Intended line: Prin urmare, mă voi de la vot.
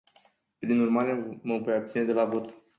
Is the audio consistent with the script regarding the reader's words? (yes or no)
no